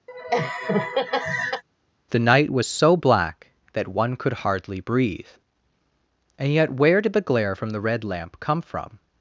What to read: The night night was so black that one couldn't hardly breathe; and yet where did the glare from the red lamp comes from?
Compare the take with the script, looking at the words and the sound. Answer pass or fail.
fail